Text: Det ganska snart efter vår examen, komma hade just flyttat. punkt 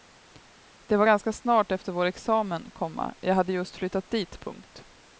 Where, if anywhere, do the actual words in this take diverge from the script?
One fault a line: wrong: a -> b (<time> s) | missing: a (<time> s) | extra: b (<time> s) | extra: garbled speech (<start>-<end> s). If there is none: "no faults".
extra: var (1.0 s)
extra: jag (3.2 s)
extra: dit (4.1 s)